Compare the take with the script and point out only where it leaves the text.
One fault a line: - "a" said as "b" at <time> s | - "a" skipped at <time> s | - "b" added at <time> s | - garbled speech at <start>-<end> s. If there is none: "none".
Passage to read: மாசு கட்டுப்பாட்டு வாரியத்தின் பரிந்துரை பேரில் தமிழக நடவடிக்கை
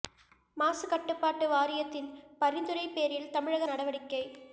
none